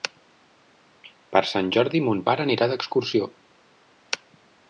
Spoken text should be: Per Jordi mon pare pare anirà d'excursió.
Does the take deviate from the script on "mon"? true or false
false